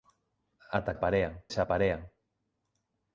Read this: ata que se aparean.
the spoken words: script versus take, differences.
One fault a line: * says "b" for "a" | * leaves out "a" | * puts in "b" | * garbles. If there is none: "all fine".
* says "aparean" for "que"